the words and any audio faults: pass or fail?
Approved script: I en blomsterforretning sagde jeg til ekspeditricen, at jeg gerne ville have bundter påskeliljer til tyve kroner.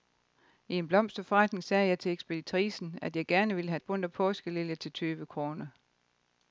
pass